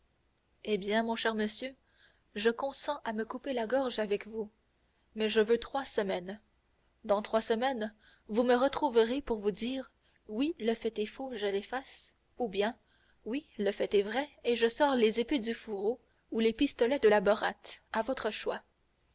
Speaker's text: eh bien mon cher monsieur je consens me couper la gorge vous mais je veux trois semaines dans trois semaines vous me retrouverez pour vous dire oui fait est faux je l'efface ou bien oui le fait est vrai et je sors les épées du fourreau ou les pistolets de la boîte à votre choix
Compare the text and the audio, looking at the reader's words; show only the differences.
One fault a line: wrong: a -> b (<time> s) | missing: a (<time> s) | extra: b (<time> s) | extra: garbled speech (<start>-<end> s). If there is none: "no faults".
extra: à (3.0 s)
extra: avec (4.0 s)
extra: le (10.6 s)